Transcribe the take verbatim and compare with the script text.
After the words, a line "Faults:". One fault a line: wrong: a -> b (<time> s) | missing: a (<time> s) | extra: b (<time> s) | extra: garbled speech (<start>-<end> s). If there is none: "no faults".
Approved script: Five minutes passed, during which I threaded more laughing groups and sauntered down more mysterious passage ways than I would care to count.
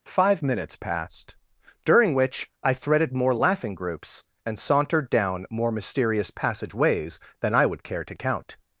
Five minutes passed, during which I threaded more laughing groups and sauntered down more mysterious passage ways than I would care to count.
Faults:
no faults